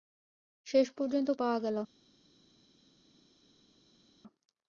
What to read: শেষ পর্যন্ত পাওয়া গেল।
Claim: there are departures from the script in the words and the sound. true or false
false